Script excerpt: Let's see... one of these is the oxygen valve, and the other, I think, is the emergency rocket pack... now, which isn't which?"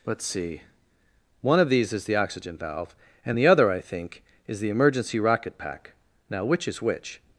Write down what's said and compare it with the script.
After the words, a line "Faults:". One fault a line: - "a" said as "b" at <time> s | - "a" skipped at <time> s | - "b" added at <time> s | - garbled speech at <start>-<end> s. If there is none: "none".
Let's see... one of these is the oxygen valve, and the other, I think, is the emergency rocket pack... now, which is which?"
Faults:
- "isn't" said as "is" at 6.7 s